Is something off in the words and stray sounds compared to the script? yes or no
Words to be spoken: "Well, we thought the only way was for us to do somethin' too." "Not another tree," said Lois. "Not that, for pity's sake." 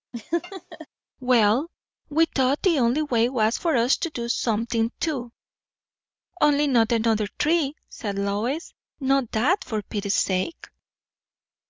yes